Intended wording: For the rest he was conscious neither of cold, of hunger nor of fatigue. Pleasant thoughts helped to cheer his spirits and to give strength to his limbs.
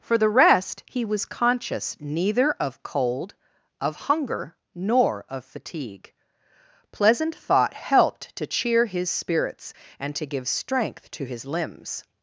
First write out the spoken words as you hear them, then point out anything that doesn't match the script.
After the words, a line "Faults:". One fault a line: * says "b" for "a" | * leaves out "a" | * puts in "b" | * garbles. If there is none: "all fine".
For the rest he was conscious neither of cold, of hunger nor of fatigue. Pleasant thought helped to cheer his spirits and to give strength to his limbs.
Faults:
* says "thought" for "thoughts"